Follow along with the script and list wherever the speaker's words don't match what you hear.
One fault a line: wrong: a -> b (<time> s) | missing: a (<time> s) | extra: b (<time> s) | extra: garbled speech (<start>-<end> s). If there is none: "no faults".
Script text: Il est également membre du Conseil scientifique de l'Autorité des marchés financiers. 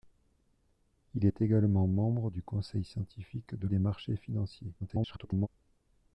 missing: l'Autorité (3.7 s)
extra: garbled speech (4.8-5.5 s)